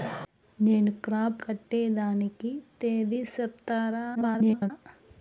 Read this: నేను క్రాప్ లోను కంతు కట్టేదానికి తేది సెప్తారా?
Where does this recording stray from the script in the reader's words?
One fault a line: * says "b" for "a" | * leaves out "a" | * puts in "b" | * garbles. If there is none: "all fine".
* leaves out "లోను కంతు"
* garbles